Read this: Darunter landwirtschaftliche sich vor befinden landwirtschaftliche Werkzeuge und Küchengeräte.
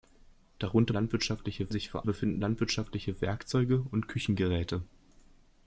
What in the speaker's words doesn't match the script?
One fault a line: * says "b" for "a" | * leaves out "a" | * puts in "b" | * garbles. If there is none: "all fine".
all fine